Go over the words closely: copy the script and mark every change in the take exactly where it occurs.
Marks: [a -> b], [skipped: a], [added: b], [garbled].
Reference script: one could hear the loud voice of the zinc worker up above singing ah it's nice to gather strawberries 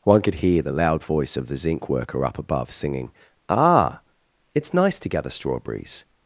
one could hear the loud voice of the zinc worker up above singing ah it's nice to gather strawberries